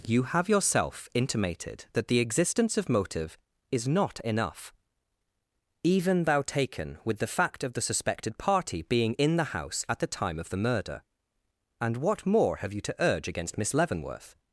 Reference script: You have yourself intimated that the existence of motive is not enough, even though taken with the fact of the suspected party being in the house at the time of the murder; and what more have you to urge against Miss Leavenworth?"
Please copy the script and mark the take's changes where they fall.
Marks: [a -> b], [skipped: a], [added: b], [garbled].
You have yourself intimated that the existence of motive is not enough, even [though -> thou] taken with the fact of the suspected party being in the house at the time of the murder; and what more have you to urge against Miss Leavenworth?"